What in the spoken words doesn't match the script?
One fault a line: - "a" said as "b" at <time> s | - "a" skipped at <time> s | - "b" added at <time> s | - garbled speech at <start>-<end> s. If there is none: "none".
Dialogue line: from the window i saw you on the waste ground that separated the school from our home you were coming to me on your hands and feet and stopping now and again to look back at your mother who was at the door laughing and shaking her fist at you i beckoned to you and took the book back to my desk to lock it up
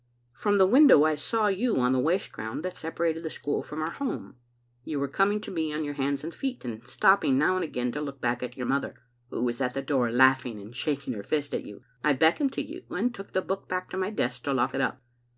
none